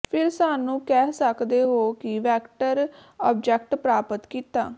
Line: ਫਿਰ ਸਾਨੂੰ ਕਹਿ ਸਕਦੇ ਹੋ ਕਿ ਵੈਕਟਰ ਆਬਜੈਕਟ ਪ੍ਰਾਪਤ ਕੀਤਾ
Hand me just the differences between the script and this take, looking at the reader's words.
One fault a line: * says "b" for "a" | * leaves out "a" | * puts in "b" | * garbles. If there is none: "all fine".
all fine